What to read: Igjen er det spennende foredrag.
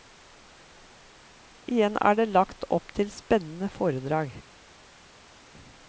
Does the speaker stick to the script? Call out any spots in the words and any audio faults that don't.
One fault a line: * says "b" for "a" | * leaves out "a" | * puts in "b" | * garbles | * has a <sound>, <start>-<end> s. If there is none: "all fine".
* puts in "lagt opp til"